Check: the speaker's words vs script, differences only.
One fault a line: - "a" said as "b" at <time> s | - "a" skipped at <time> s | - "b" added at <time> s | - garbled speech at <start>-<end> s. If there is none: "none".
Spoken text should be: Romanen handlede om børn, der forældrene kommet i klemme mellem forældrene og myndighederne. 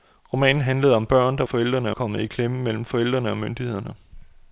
none